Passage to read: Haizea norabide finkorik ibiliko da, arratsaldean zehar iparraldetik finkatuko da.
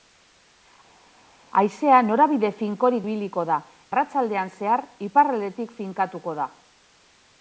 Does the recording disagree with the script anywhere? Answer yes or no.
no